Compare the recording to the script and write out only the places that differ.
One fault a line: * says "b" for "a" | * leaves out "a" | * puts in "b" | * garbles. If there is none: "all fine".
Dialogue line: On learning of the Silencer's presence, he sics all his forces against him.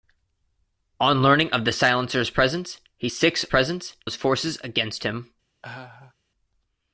* says "presence" for "all"